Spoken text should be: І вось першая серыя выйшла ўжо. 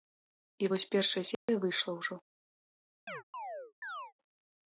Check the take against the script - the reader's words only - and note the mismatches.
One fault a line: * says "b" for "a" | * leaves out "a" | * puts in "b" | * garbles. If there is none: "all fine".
all fine